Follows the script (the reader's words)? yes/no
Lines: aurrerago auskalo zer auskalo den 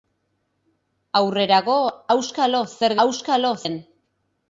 yes